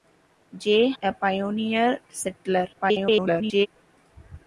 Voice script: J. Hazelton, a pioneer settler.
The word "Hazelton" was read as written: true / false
false